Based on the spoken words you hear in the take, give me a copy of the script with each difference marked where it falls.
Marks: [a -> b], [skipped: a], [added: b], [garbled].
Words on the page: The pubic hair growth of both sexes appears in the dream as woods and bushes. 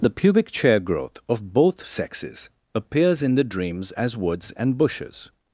The pubic [hair -> chair] growth of both sexes appears in the [dream -> dreams] as woods and bushes.